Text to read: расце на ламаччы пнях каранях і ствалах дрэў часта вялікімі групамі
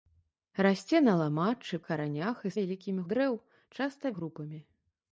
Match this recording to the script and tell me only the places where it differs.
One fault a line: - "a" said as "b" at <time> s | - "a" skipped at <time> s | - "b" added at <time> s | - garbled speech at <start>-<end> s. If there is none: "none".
- "пнях" skipped at 1.8 s
- "ствалах" said as "вялікімі" at 2.6 s
- "вялікімі" skipped at 4.1 s